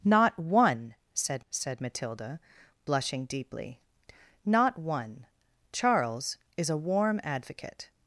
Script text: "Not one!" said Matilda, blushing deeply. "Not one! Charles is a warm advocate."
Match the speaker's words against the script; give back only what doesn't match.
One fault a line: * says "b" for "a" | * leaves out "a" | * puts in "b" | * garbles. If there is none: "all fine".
* puts in "said"